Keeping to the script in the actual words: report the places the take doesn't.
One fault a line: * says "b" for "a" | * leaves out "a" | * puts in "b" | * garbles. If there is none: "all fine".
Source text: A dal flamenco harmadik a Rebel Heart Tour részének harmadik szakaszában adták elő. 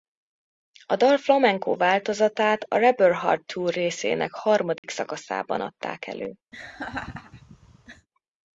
* says "változatát" for "harmadik"